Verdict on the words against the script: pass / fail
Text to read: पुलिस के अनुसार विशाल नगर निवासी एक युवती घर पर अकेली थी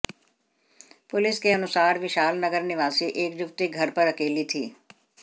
pass